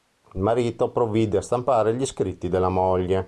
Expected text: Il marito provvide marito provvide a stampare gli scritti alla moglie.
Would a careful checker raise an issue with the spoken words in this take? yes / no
yes